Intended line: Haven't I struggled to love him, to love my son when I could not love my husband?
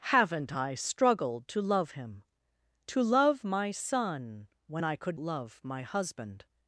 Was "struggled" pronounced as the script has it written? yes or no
yes